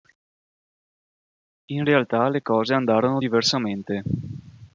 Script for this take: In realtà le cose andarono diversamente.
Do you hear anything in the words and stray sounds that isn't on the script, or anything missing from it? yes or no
no